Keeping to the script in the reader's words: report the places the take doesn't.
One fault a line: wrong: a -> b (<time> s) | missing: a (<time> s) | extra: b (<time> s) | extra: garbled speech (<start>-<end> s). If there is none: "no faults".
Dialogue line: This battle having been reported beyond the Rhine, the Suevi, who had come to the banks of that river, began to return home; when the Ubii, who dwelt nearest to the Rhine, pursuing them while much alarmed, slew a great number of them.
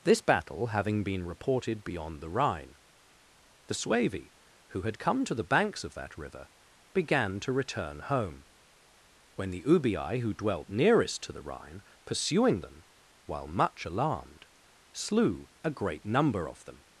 no faults